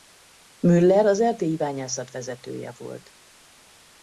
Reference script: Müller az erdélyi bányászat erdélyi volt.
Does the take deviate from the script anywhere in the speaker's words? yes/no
yes